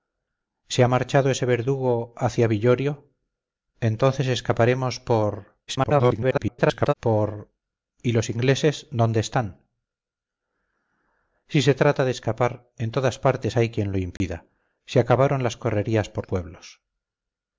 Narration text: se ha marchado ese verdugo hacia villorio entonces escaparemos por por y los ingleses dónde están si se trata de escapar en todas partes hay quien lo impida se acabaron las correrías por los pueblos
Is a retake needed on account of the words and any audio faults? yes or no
yes